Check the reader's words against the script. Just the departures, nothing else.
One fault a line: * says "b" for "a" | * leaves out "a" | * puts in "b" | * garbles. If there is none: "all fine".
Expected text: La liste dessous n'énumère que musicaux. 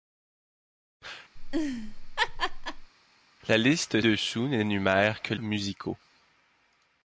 all fine